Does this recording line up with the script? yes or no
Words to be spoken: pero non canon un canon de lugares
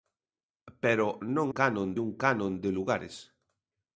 yes